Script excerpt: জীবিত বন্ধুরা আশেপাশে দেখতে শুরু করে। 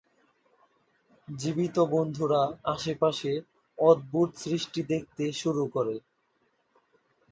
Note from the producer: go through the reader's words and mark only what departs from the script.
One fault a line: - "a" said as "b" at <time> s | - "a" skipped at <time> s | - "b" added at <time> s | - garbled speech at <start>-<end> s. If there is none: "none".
- "অদ্ভুত সৃষ্টি" added at 3.8 s